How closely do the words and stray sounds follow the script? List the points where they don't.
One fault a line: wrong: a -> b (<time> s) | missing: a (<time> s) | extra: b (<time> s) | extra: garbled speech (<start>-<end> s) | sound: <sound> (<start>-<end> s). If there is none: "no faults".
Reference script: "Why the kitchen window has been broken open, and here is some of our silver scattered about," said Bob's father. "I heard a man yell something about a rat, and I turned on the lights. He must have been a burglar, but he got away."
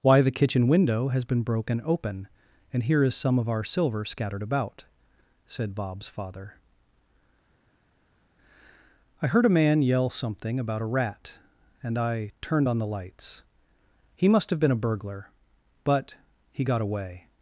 no faults